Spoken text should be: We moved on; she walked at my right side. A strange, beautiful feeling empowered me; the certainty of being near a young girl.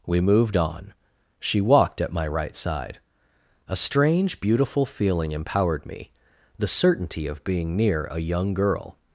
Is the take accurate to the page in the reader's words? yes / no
yes